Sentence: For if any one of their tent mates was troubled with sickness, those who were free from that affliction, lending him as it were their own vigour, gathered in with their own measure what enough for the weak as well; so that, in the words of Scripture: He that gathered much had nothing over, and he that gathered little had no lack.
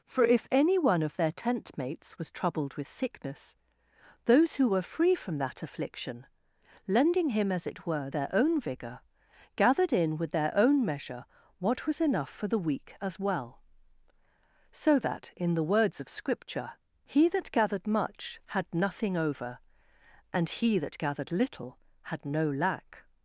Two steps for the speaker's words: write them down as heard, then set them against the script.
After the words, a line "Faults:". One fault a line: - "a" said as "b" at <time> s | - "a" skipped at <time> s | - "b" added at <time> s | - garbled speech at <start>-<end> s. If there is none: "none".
For if any one of their tent mates was troubled with sickness, those who were free from that affliction, lending him as it were their own vigour, gathered in with their own measure what was enough for the weak as well; so that, in the words of Scripture: He that gathered much had nothing over, and he that gathered little had no lack.
Faults:
- "was" added at 11.9 s